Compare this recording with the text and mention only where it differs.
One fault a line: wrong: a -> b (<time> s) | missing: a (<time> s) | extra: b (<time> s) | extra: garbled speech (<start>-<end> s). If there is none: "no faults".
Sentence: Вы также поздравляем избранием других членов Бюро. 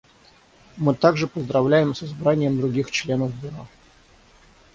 wrong: Вы -> Мы (0.8 s)
extra: с (1.9 s)